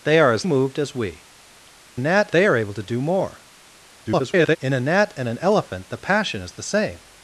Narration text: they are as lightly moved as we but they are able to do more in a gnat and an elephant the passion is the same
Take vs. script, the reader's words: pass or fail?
fail